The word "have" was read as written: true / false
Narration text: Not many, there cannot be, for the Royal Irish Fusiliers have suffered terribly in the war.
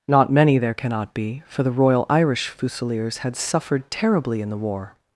false